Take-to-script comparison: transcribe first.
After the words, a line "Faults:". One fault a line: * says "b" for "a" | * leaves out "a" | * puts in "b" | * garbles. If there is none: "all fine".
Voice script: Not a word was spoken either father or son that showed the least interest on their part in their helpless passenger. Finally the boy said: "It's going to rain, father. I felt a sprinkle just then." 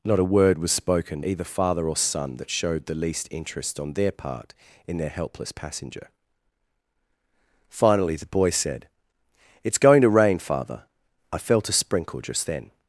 Not a word was spoken either father or son that showed the least interest on their part in their helpless passenger. Finally the boy said: "It's going to rain, father. I felt a sprinkle just then."
Faults:
all fine